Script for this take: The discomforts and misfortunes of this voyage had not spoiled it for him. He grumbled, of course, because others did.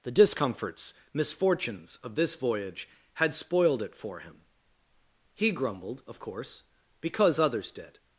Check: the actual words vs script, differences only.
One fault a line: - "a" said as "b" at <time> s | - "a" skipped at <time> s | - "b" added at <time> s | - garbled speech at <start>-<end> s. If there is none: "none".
- "and" skipped at 0.9 s
- "not" skipped at 3.3 s